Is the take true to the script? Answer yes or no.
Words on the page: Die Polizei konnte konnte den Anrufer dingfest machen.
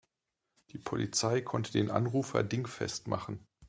no